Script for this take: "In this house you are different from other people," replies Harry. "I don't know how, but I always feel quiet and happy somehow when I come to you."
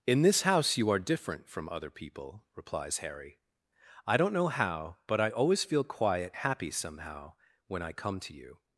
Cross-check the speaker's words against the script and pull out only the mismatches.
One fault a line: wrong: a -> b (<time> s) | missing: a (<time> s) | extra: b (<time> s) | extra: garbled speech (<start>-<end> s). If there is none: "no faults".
missing: and (6.3 s)